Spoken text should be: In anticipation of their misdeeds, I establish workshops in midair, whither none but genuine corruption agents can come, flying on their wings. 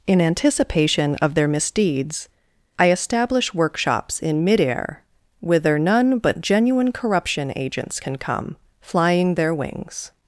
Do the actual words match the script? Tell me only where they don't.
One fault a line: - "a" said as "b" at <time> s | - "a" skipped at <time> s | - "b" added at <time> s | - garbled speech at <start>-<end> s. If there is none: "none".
- "on" skipped at 9.3 s